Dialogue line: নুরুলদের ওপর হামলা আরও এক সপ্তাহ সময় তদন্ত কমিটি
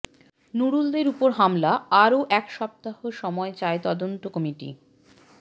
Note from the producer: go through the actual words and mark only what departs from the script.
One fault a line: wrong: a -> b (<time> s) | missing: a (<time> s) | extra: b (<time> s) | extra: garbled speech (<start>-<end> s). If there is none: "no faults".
extra: চায় (3.6 s)